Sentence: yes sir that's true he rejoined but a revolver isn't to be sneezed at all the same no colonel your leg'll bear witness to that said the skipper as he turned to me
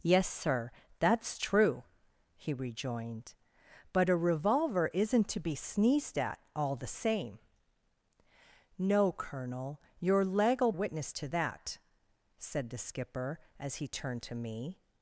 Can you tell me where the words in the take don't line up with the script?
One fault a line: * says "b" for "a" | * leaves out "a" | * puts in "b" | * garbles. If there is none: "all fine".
* leaves out "bear"